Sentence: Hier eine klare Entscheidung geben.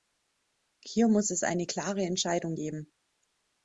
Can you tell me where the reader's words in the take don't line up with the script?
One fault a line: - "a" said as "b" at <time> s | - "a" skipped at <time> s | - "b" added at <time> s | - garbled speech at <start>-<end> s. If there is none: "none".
- "muss es" added at 1.1 s